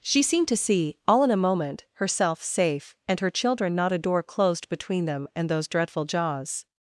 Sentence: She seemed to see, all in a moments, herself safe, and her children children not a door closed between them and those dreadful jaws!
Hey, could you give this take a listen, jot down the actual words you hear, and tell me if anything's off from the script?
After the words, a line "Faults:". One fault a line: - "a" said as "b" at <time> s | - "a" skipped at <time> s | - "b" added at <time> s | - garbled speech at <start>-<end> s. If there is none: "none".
She seemed to see, all in a moment, herself safe, and her children not a door closed between them and those dreadful jaws!
Faults:
- "moments" said as "moment" at 1.4 s
- "children" skipped at 3.8 s